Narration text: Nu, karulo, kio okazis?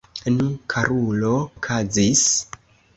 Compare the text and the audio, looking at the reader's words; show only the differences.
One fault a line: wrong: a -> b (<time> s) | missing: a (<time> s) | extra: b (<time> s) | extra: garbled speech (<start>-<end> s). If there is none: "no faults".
missing: kio (1.4 s)